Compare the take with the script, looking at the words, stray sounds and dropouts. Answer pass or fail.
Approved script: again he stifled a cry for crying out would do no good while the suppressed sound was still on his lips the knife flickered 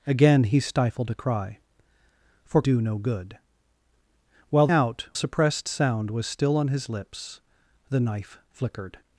fail